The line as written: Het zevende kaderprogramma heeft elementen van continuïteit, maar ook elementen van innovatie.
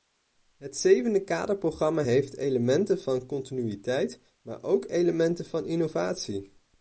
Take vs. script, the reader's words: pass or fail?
pass